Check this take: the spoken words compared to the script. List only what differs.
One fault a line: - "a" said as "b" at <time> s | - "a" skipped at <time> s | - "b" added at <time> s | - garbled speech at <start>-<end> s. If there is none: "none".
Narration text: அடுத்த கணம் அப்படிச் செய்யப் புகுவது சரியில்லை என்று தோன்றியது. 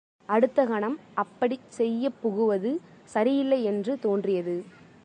none